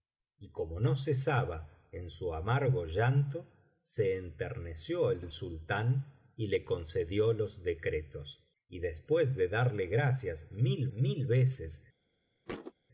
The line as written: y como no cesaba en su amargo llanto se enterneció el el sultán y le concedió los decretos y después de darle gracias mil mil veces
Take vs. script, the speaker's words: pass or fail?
pass